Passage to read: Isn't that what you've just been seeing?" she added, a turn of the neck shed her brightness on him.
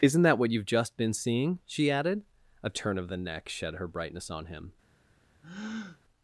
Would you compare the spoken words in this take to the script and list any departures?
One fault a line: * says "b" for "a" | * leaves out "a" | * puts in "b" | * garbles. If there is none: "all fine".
all fine